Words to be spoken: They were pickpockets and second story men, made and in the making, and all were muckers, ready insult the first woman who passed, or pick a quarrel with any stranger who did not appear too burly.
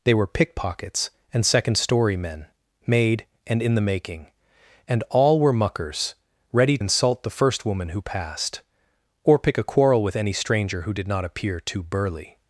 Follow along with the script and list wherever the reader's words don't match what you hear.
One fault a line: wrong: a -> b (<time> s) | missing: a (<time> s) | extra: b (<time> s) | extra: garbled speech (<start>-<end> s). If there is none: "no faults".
no faults